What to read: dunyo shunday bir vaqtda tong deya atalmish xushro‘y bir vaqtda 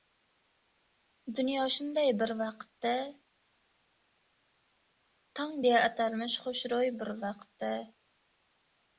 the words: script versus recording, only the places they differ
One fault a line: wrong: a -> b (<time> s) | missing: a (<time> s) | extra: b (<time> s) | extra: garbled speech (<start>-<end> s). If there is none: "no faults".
no faults